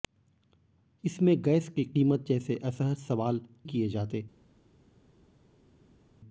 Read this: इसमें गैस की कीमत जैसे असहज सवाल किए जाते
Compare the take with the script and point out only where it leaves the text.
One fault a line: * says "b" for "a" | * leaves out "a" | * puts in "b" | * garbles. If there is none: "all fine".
all fine